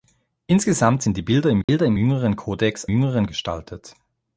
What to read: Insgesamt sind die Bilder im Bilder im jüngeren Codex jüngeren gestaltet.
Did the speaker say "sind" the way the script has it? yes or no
yes